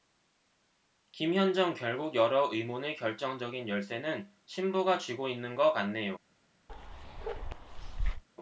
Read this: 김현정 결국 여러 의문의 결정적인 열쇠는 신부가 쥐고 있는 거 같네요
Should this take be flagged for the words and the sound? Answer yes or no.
yes